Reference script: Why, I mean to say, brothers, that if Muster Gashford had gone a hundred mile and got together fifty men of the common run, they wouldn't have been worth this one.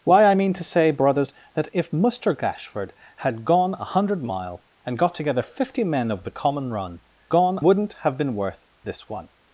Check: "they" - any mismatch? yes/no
yes